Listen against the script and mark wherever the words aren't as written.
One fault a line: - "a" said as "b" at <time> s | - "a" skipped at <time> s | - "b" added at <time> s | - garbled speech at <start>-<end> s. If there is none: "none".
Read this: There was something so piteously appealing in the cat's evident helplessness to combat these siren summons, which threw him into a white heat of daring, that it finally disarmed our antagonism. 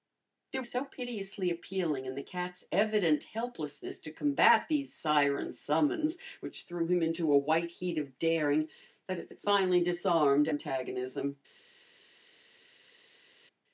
- "was something" skipped at 0.6 s
- "it" added at 9.3 s
- "our" skipped at 10.5 s